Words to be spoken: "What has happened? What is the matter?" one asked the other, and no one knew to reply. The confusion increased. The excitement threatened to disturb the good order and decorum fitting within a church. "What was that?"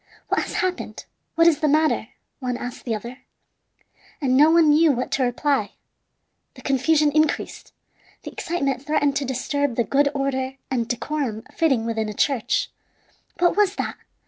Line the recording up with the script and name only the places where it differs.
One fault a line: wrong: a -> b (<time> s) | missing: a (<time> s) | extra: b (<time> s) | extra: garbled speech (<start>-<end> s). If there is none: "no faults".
extra: what (4.9 s)